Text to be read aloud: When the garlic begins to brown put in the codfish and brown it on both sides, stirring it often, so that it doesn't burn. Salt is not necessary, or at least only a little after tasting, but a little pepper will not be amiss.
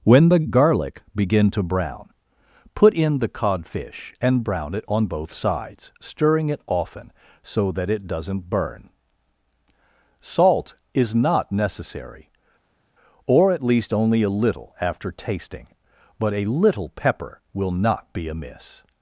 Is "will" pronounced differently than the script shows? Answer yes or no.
no